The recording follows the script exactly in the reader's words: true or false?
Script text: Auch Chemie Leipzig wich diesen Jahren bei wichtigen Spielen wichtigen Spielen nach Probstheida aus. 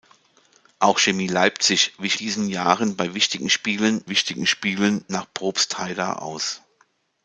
true